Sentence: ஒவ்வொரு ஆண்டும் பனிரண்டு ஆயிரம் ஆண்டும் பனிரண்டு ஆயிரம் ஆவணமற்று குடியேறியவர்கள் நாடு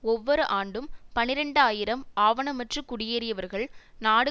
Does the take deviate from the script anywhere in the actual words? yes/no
yes